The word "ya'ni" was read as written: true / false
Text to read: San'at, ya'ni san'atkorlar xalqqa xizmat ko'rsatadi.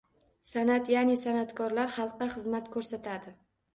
true